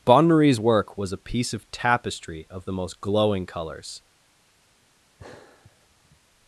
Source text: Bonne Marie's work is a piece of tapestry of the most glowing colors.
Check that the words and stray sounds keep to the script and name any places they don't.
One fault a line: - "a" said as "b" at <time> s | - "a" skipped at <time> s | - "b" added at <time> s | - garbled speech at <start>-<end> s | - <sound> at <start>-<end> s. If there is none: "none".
- "is" said as "was" at 1.0 s
- sigh at 5.2-6.2 s